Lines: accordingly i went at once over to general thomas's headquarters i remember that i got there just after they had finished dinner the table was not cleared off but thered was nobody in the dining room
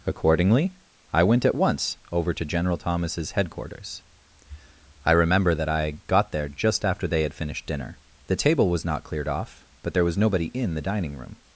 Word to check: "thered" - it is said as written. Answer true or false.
false